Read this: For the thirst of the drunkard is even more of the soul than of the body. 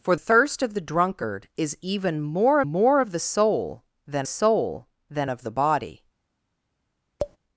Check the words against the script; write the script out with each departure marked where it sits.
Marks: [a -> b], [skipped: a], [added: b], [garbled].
For [skipped: the] thirst of the drunkard is even more [added: more] of the soul than [added: soul than] of the body.